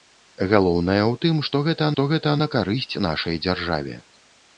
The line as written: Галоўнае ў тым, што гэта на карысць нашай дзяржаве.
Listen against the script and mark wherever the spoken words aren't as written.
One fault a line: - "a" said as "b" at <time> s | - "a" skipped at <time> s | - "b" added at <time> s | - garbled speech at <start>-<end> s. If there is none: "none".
- "што гэта" added at 1.9 s